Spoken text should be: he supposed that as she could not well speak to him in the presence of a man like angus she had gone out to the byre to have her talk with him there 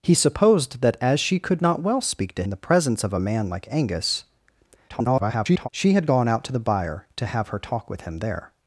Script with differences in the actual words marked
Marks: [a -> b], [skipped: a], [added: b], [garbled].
he supposed that as she could not well speak to [skipped: him] in the presence of a man like angus [garbled] she had gone out to the byre to have her talk with him there